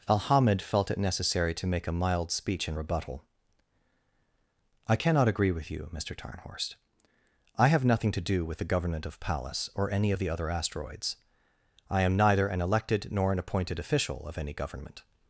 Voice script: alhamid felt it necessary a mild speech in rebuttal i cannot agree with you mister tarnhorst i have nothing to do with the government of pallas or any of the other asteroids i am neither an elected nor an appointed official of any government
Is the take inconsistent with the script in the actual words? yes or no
yes